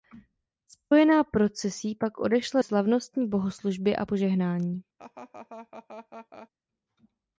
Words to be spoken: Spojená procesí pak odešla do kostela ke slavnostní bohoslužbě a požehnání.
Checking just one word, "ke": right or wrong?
wrong